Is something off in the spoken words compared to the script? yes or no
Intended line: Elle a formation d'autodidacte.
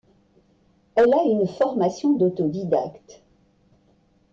yes